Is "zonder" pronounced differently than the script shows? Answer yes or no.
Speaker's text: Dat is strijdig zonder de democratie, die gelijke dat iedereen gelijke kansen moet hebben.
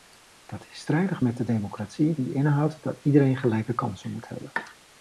yes